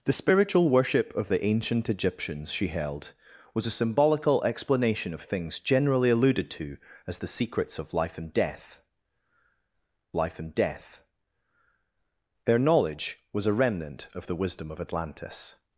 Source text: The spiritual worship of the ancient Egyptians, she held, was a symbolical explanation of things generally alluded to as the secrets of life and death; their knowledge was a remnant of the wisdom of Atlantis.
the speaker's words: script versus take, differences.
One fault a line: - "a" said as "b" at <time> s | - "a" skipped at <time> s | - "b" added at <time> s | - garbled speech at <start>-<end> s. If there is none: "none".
- "life and death" added at 10.1 s